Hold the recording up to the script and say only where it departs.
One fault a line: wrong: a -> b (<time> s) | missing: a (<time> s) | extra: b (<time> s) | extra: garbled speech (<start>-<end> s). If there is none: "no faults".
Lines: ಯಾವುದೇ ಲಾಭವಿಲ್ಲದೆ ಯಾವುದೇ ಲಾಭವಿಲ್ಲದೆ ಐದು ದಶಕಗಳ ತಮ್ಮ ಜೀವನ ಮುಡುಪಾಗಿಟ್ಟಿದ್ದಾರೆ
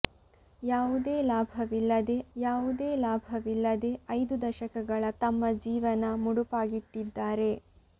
no faults